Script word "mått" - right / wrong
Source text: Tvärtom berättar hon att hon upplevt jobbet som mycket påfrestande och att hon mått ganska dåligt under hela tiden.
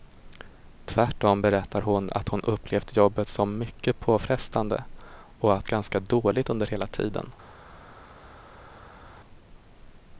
wrong